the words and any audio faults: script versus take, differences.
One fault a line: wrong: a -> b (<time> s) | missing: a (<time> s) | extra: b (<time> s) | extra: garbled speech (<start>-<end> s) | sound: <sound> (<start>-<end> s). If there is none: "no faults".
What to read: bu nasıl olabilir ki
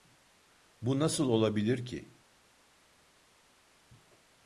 no faults